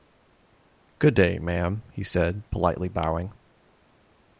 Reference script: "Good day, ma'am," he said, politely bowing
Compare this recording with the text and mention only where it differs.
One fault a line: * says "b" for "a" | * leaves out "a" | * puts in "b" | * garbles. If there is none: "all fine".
all fine